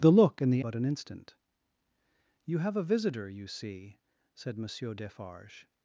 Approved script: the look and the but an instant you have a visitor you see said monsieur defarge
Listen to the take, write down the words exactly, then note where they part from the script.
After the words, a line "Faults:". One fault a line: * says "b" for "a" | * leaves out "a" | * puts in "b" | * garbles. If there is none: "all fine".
the look and the but an instant you have a visitor you see said monsieur defarge
Faults:
all fine